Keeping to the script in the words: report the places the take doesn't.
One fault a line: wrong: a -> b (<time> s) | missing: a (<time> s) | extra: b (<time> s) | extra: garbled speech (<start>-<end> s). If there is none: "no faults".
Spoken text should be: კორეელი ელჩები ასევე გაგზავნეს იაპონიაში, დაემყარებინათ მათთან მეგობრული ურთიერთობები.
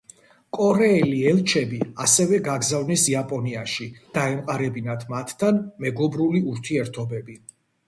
no faults